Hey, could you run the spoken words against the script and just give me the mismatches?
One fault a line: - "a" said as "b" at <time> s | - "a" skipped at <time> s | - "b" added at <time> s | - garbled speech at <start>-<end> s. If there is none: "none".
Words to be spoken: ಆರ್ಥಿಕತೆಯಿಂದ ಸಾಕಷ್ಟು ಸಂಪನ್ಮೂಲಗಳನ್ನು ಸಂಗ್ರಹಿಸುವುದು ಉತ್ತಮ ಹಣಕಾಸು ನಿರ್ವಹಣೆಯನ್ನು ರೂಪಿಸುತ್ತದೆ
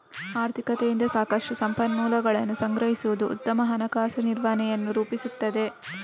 none